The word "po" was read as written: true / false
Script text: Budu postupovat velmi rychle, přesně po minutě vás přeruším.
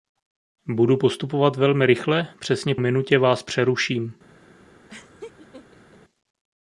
false